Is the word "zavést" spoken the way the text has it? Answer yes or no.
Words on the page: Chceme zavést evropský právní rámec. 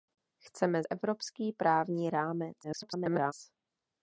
no